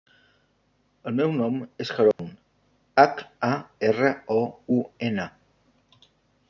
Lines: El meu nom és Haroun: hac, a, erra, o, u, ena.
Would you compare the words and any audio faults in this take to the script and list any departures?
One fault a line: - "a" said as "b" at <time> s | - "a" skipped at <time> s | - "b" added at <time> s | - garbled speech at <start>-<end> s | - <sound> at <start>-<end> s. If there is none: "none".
- dropout at 2.1-2.2 s